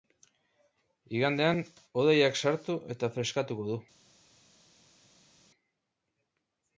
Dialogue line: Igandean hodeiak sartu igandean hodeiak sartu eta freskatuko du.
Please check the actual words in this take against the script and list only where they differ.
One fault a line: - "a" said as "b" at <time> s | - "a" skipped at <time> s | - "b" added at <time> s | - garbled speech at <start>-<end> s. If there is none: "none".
- "igandean hodeiak sartu" skipped at 2.8 s